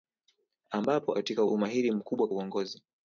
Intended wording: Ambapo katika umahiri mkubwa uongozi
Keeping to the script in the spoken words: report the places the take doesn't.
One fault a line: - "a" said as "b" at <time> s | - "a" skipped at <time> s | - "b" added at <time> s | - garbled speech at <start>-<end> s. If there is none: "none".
none